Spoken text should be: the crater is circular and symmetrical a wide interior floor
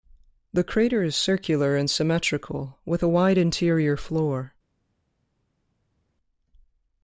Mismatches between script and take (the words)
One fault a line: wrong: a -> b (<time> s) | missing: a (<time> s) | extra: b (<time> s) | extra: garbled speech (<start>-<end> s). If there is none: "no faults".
extra: with (2.9 s)